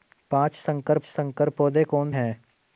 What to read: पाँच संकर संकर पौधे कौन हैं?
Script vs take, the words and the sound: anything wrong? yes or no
no